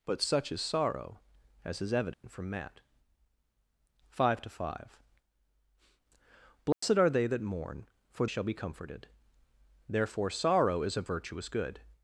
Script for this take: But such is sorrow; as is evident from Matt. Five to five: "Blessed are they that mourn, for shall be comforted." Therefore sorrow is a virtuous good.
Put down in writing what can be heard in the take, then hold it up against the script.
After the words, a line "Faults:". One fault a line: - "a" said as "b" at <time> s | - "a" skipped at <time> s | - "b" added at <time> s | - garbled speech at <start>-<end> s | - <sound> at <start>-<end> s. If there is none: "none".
But such is sorrow; as is evident from Matt. Five to five: "Blessed are they that mourn, for shall be comforted." Therefore sorrow is a virtuous good.
Faults:
- dropout at 2.1-2.2 s
- dropout at 6.7-6.8 s